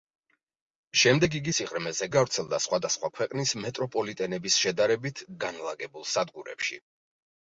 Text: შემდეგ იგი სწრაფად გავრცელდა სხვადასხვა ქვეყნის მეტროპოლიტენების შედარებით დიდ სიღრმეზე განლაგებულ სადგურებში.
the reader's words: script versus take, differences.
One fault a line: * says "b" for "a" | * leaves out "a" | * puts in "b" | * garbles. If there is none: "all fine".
* says "სიღრმეზე" for "სწრაფად"
* leaves out "დიდ სიღრმეზე"